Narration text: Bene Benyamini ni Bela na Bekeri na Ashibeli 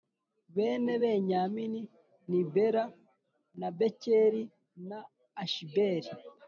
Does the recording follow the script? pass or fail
pass